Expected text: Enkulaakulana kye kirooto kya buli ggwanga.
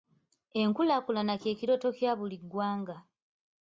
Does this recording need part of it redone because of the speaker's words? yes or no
no